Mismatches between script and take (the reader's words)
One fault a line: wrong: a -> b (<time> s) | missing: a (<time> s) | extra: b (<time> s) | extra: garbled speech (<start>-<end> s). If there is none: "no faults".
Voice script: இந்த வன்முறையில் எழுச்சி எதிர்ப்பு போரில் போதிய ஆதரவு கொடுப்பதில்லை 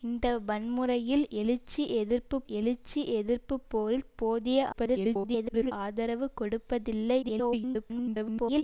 extra: எழுச்சி எதிர்ப்பு (2.5 s)
extra: garbled speech (4.7-5.7 s)
extra: garbled speech (7.2-8.6 s)